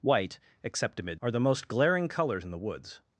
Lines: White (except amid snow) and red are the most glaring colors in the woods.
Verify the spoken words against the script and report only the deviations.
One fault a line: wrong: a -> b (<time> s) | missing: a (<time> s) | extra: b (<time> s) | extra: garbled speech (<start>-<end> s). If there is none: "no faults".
missing: snow and red (1.2 s)